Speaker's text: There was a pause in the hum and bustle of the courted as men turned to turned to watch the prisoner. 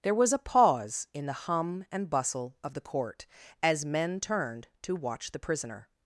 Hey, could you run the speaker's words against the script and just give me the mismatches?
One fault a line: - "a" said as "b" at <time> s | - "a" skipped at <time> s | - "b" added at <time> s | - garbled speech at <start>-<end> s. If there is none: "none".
- "courted" said as "court" at 2.8 s
- "turned to" skipped at 5.0 s